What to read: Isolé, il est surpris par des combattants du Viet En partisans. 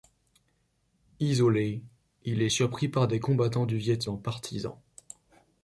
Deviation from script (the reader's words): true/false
false